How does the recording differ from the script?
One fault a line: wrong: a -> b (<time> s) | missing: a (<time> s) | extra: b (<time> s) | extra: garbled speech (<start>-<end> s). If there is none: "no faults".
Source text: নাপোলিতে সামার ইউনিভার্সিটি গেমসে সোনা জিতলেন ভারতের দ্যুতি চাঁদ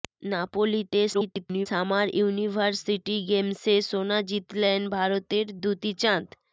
extra: garbled speech (1.1-1.7 s)